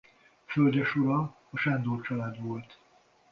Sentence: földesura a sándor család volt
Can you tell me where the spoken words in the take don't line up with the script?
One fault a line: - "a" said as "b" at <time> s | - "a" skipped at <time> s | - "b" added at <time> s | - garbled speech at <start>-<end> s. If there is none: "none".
none